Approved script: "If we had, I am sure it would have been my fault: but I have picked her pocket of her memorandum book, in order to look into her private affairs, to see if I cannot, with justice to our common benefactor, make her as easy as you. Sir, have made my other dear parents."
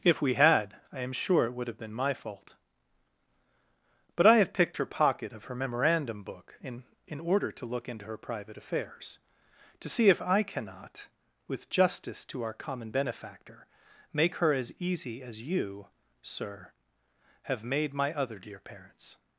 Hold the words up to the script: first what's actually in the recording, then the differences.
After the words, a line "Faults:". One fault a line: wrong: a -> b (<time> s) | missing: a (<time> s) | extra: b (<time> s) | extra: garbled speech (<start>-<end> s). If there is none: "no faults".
"If we had, I am sure it would have been my fault: but I have picked her pocket of her memorandum book, in in order to look into her private affairs, to see if I cannot, with justice to our common benefactor, make her as easy as you. Sir, have made my other dear parents."
Faults:
extra: in (7.0 s)